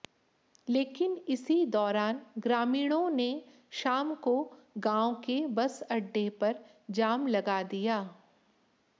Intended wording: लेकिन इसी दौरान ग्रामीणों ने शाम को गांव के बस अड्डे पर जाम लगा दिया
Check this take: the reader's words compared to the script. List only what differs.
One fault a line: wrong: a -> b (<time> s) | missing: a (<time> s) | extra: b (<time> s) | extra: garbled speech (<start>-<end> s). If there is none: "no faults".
no faults